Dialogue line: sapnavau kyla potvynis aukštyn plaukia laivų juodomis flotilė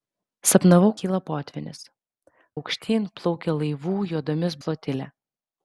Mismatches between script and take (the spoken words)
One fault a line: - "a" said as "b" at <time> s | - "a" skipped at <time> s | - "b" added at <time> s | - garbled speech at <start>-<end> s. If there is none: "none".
none